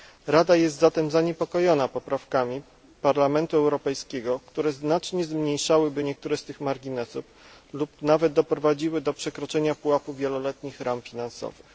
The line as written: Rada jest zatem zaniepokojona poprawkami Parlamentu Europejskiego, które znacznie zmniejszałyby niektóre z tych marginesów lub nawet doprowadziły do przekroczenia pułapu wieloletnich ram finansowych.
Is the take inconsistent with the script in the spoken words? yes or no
no